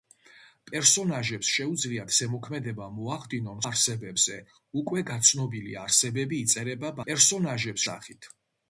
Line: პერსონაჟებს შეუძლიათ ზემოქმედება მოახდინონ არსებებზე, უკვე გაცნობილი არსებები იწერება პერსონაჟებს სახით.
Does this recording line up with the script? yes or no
yes